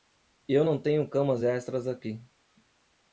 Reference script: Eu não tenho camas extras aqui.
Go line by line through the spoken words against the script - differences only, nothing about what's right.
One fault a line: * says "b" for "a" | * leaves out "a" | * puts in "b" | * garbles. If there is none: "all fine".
all fine